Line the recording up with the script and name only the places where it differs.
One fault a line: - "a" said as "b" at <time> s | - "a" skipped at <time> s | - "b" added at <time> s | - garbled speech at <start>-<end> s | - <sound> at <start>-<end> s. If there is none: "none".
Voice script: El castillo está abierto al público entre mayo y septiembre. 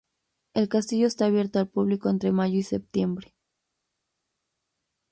none